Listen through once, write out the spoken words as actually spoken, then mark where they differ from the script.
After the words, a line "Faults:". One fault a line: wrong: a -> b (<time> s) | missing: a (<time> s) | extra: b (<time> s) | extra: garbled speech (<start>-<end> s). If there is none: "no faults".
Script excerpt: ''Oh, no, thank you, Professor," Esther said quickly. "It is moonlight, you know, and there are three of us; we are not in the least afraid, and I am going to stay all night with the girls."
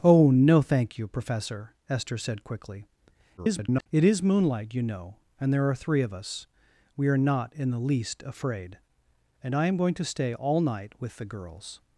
''Oh, no, thank you, Professor," Esther said quickly. [garbled] "It is moonlight, you know, and there are three of us; we are not in the least afraid, and I am going to stay all night with the girls."
Faults:
extra: garbled speech (3.4-3.9 s)